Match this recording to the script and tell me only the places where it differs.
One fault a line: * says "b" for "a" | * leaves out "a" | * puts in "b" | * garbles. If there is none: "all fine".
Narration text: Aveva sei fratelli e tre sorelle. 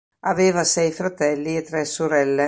all fine